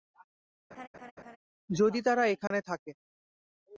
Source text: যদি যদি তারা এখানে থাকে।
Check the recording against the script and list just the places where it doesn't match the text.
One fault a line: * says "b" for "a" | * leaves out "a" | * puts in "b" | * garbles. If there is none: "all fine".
* leaves out "যদি"